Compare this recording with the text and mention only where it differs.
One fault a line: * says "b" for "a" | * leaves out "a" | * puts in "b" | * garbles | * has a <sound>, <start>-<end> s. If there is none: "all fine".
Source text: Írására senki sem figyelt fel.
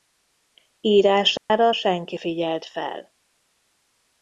* has a dropout, 1.4-1.5 s
* leaves out "sem"